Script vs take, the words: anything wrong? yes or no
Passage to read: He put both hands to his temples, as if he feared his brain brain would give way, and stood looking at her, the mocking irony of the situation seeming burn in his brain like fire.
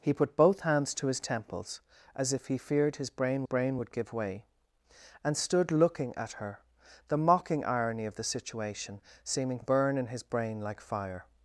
no